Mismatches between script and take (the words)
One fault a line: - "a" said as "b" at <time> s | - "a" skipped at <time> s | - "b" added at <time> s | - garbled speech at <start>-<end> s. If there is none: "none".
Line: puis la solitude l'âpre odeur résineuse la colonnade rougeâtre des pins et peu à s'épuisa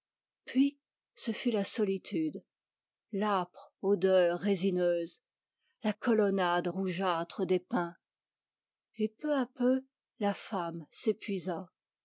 - "ce fut" added at 1.1 s
- "peu la femme" added at 9.5 s